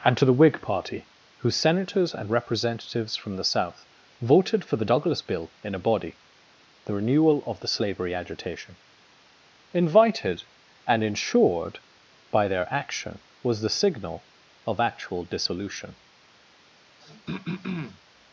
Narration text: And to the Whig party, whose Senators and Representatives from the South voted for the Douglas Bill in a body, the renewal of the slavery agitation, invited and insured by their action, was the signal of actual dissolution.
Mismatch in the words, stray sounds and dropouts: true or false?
true